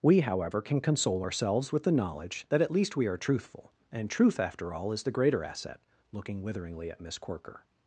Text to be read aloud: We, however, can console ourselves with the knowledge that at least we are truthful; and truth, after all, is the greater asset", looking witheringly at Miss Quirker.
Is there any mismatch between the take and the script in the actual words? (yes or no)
no